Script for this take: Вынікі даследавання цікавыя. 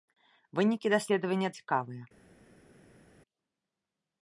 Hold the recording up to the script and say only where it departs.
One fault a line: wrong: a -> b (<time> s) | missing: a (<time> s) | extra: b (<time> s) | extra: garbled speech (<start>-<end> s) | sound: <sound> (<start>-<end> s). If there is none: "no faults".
no faults